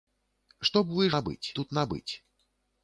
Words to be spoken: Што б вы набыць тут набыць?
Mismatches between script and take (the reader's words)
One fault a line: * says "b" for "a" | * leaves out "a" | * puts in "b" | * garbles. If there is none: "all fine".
all fine